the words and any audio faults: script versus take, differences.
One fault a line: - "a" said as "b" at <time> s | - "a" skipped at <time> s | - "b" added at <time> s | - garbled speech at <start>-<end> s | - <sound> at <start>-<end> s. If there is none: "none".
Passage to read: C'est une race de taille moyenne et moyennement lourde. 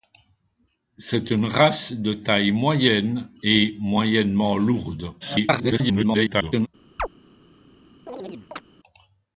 - garbled speech at 5.2-6.7 s
- chirp at 7.0-7.1 s
- chirp at 8.1-8.6 s